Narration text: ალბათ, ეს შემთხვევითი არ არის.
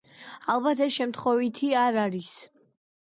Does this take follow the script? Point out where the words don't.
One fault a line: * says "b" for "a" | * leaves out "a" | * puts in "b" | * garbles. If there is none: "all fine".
all fine